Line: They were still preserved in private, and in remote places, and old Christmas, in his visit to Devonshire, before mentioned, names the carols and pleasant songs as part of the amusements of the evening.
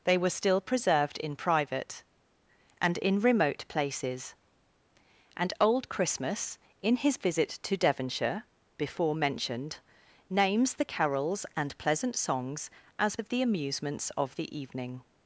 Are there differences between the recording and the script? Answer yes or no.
yes